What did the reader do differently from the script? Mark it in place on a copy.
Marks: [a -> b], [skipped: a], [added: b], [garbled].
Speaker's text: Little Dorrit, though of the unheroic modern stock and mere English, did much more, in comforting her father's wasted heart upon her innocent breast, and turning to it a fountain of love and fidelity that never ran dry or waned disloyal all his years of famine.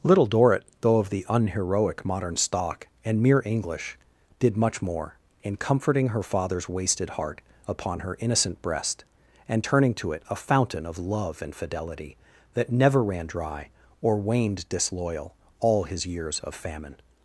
Little Dorrit, though of the unheroic modern stock and mere English, did much more, in comforting her father's wasted heart upon her innocent breast, and turning to it a fountain of love and fidelity that never ran dry or waned disloyal all his years of famine.